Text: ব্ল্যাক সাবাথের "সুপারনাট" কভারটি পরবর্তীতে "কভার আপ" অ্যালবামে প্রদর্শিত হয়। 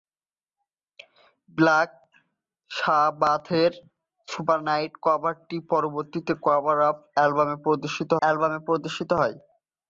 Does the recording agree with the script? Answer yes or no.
no